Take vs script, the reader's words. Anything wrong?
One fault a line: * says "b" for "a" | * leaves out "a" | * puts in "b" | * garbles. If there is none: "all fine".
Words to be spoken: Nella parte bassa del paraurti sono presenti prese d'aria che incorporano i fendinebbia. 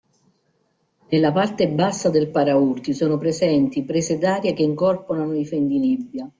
all fine